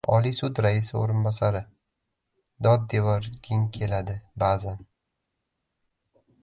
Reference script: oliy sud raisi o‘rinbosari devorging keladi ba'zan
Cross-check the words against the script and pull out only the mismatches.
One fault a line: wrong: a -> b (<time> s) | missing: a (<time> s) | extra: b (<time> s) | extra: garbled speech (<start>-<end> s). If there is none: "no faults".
extra: dod (2.7 s)